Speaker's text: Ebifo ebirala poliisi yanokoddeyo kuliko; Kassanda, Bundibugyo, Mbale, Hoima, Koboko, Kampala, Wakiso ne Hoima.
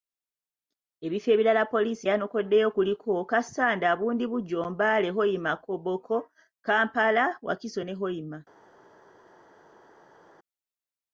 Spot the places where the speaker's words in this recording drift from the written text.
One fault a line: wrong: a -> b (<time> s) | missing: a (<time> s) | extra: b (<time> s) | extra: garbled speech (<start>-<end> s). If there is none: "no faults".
no faults